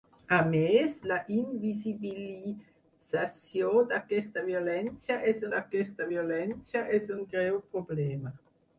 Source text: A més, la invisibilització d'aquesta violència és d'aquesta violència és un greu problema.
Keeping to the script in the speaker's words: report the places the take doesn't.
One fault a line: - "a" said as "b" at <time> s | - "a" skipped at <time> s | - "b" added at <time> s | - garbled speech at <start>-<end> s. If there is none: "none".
none